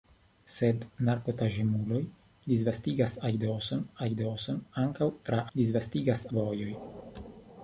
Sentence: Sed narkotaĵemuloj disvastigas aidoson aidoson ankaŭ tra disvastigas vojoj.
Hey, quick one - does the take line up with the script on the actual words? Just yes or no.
yes